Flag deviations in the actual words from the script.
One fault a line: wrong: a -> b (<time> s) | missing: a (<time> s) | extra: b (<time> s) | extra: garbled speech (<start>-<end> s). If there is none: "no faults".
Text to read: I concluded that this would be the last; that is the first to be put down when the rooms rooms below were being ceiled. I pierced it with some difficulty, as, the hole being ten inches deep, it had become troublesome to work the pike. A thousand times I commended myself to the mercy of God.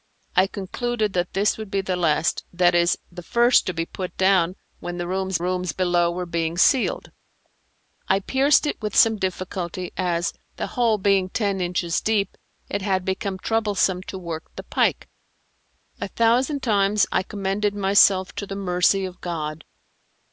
no faults